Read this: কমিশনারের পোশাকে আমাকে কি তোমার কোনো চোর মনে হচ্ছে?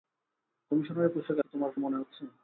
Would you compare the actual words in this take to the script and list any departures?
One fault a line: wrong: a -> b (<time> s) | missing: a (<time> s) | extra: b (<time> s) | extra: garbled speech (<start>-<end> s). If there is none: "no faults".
missing: আমাকে (1.4 s)
missing: কোনো চোর (1.7 s)